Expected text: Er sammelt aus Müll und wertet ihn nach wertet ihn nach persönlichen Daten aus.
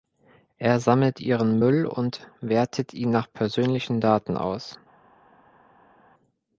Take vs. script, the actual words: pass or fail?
fail